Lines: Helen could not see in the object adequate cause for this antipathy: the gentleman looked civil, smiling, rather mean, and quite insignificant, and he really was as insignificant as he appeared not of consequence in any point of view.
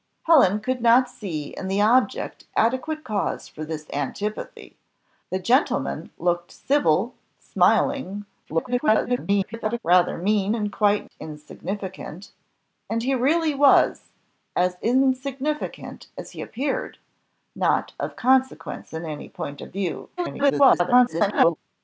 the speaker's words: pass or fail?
fail